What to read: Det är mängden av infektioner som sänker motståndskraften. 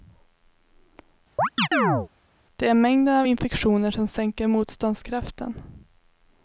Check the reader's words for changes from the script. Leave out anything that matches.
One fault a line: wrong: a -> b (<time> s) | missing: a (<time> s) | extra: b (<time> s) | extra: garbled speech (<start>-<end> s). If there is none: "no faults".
no faults